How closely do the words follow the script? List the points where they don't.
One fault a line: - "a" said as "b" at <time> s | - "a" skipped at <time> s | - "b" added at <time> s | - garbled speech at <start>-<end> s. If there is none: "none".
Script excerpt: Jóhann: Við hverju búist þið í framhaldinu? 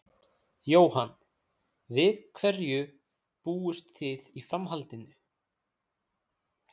none